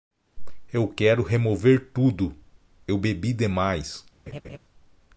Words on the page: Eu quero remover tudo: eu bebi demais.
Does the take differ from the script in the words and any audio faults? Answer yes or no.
yes